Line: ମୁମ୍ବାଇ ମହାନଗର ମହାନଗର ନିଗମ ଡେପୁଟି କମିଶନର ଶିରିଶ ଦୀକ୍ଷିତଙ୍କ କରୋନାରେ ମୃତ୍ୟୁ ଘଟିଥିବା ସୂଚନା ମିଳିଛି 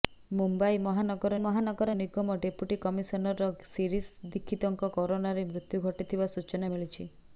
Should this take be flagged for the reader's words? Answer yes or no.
no